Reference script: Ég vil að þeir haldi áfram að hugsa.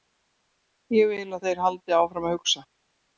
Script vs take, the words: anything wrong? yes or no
no